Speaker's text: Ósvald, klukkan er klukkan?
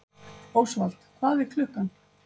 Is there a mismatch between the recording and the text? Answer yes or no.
yes